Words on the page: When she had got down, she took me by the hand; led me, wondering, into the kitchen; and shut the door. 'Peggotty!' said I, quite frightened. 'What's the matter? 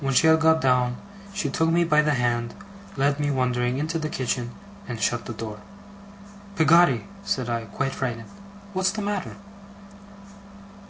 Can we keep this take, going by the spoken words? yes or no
yes